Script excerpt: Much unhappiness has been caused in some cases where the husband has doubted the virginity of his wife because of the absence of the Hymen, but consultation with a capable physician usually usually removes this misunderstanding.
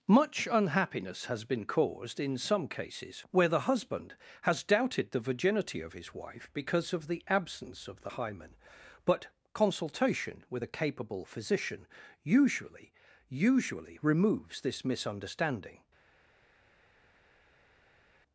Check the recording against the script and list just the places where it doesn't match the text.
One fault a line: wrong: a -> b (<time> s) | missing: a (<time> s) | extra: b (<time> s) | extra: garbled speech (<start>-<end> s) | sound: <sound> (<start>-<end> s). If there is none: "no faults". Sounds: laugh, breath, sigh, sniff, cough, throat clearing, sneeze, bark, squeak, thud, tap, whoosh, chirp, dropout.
no faults